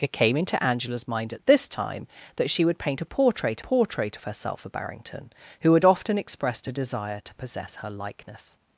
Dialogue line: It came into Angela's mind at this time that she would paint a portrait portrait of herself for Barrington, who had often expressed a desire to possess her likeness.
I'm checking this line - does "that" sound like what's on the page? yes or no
yes